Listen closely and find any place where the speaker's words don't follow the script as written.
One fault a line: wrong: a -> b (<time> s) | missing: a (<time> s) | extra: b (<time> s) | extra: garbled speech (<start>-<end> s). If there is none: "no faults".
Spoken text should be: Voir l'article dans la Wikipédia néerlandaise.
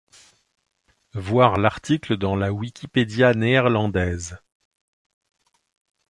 no faults